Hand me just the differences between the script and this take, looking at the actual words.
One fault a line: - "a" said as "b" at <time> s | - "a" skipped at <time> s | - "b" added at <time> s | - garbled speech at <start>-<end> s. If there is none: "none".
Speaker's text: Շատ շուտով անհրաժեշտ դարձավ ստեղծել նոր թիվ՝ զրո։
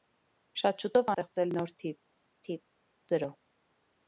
- "անհրաժեշտ դարձավ" skipped at 1.1 s
- "թիվ" added at 2.5 s